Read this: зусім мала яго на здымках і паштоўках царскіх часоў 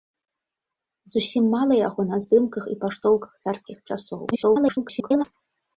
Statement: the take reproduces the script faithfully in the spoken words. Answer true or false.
false